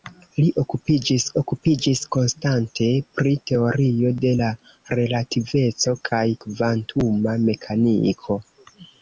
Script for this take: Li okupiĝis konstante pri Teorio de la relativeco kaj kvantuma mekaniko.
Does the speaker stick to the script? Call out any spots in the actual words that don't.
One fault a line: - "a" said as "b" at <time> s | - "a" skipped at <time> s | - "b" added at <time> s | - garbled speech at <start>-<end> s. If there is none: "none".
- "okupiĝis" added at 1.4 s